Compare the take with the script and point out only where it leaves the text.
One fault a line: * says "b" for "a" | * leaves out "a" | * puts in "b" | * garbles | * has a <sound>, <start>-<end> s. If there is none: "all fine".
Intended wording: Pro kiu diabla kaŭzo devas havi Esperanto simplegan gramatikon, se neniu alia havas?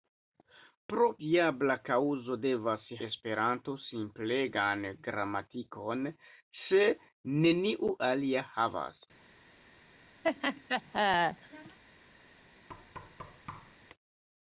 * leaves out "kiu"
* leaves out "havi"
* has a laugh, 10.2-11.8 s
* has a thud, 12.7-13.8 s